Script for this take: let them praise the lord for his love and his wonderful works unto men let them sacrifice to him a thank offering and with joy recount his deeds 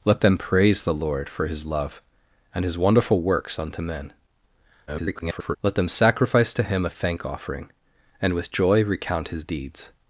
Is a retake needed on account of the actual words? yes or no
yes